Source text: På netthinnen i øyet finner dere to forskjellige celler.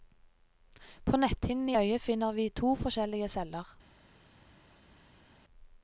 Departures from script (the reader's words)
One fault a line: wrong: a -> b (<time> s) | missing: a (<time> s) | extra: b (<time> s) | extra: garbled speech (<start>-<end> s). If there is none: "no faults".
wrong: dere -> vi (2.3 s)